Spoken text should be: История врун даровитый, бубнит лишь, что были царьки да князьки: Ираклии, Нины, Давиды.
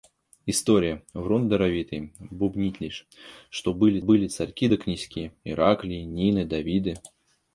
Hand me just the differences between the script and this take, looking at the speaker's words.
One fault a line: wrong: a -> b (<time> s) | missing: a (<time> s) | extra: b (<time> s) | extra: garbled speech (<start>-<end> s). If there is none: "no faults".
extra: были (4.0 s)